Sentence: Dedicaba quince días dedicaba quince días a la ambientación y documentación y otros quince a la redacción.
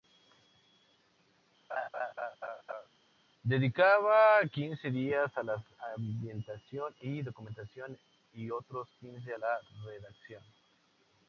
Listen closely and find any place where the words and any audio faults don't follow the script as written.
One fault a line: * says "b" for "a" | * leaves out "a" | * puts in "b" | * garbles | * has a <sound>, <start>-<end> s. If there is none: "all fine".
* has a laugh, 1.7-2.9 s
* leaves out "dedicaba quince días"